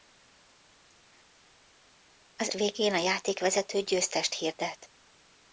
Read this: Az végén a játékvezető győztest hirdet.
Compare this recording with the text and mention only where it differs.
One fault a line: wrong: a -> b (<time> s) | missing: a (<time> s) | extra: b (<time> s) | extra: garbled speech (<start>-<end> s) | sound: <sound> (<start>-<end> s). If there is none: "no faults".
no faults